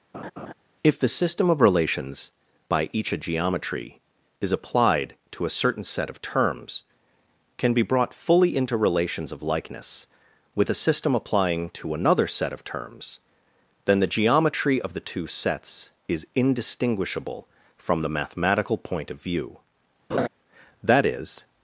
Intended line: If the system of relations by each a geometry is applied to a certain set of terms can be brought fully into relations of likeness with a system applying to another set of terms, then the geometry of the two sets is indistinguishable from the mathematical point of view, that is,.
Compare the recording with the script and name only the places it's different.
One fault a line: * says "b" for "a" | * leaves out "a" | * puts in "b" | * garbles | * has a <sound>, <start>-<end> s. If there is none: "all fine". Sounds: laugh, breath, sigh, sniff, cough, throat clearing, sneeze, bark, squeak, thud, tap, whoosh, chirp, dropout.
* has a laugh, 0.1-0.5 s
* has a laugh, 20.1-20.3 s